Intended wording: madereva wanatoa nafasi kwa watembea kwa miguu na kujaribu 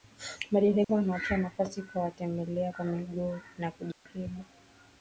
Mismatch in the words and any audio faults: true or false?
true